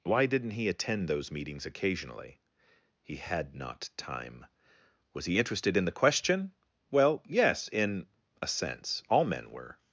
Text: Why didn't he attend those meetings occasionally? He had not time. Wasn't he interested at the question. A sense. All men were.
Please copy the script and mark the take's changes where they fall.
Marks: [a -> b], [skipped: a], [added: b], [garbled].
Why didn't he attend those meetings occasionally? He had not time. [Wasn't -> Was] he interested [at -> in] the question. [added: Well yes in] A sense. All men were.